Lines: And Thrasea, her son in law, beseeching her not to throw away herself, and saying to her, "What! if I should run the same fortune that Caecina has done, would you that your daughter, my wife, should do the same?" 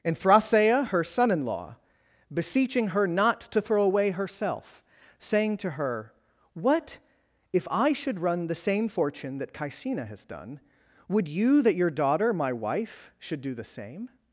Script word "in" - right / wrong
right